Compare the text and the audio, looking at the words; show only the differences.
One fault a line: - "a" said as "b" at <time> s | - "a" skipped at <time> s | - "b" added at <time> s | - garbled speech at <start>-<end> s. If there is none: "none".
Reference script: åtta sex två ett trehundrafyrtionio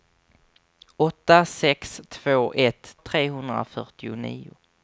none